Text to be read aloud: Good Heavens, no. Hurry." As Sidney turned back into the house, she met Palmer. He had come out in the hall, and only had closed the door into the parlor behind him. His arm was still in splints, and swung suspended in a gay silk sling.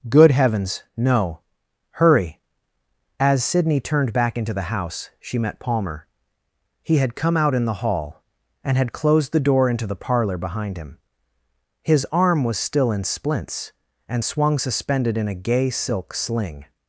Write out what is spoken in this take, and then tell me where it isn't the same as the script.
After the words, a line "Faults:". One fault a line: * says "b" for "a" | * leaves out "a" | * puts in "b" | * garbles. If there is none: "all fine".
Good Heavens, no. Hurry." As Sidney turned back into the house, she met Palmer. He had come out in the hall, and had closed the door into the parlor behind him. His arm was still in splints, and swung suspended in a gay silk sling.
Faults:
* leaves out "only"